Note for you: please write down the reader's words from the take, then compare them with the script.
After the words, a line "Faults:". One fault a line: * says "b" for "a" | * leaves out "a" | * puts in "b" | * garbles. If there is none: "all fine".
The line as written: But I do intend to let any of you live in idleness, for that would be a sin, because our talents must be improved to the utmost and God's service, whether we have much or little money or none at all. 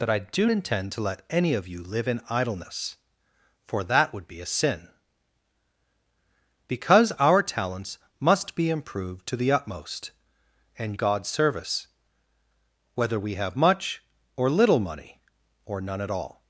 But I do intend to let any of you live in idleness, for that would be a sin, because our talents must be improved to the utmost and God's service, whether we have much or little money or none at all.
Faults:
all fine